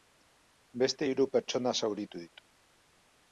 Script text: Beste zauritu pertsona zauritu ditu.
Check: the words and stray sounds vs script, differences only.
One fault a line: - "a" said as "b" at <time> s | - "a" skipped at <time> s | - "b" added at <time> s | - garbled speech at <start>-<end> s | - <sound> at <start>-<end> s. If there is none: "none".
- "zauritu" said as "hiru" at 1.1 s